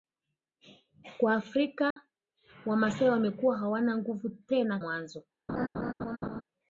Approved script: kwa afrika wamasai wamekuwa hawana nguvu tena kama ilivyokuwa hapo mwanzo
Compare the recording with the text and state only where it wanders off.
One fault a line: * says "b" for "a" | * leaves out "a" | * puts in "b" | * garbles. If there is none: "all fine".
* leaves out "kama ilivyokuwa hapo"